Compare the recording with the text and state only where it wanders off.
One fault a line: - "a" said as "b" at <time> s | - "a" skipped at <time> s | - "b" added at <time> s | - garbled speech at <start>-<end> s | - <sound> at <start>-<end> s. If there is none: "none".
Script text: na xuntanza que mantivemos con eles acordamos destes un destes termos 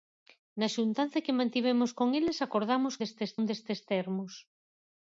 none